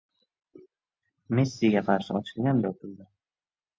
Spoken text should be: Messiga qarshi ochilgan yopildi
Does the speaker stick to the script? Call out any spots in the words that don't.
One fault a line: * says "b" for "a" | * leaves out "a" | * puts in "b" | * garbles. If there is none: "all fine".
all fine